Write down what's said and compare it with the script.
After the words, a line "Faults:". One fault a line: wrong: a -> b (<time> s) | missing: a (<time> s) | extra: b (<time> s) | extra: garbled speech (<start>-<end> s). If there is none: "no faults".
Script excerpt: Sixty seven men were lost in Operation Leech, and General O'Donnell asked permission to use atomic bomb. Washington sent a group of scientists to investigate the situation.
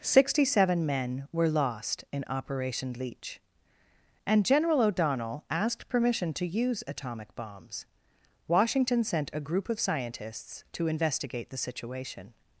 Sixty seven men were lost in Operation Leech, and General O'Donnell asked permission to use atomic bombs. Washington sent a group of scientists to investigate the situation.
Faults:
wrong: bomb -> bombs (7.3 s)